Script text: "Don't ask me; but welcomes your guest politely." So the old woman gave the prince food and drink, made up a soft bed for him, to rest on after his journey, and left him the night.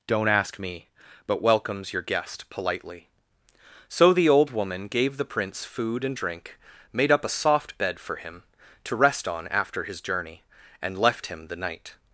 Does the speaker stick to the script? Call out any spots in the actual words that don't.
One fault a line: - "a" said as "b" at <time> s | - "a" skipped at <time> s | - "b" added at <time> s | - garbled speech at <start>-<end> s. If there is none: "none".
none